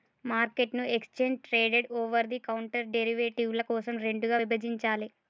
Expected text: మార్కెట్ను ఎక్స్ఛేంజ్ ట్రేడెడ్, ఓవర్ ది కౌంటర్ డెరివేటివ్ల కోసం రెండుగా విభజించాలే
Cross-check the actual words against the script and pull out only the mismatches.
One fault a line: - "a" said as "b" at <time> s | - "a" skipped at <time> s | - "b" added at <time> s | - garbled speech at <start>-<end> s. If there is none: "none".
none